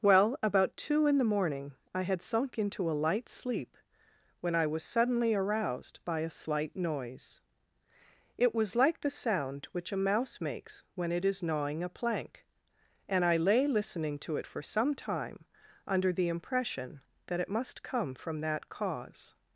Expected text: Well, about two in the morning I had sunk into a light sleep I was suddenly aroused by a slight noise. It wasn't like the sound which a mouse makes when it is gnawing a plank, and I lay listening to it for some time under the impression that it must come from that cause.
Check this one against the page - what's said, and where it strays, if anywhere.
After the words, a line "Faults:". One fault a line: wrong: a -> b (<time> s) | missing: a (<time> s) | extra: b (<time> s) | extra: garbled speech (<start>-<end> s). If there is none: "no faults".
Well, about two in the morning I had sunk into a light sleep when I was suddenly aroused by a slight noise. It was like the sound which a mouse makes when it is gnawing a plank, and I lay listening to it for some time under the impression that it must come from that cause.
Faults:
extra: when (4.4 s)
wrong: wasn't -> was (8.6 s)